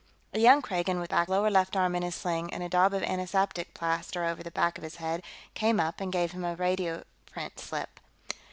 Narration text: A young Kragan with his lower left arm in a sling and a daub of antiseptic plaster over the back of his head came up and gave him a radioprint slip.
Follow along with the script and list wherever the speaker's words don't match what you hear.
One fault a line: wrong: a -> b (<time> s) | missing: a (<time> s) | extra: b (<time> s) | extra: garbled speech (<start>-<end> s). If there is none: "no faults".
wrong: his -> back (1.0 s)